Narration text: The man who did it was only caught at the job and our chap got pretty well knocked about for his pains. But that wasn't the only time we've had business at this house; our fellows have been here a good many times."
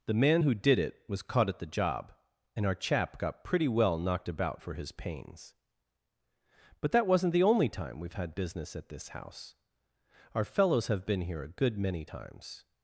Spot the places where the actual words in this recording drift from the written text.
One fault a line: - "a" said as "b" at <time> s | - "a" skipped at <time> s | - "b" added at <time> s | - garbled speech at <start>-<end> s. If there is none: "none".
- "only" skipped at 1.2 s